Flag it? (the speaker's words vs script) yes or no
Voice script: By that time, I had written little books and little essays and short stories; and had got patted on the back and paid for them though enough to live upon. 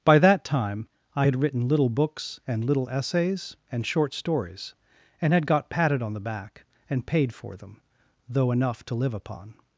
no